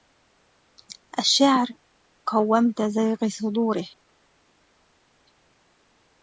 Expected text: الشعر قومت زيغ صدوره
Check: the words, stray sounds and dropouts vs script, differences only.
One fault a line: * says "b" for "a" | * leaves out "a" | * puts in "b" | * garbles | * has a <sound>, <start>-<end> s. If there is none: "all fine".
all fine